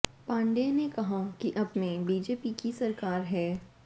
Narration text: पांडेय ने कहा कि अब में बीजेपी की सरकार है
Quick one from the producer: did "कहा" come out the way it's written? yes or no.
yes